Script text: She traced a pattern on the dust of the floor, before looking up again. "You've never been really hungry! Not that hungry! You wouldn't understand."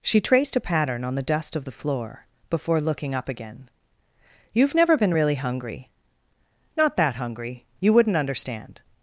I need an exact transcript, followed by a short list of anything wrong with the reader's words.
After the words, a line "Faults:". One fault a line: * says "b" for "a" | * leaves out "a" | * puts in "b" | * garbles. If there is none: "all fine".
She traced a pattern on the dust of the floor, before looking up again. "You've never been really hungry! Not that hungry! You wouldn't understand."
Faults:
all fine